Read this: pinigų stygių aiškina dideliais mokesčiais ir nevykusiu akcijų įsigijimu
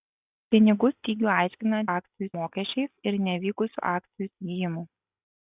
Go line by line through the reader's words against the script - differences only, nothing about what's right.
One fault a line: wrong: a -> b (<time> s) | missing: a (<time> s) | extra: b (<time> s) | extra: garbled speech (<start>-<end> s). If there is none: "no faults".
wrong: dideliais -> akcijų (1.9 s)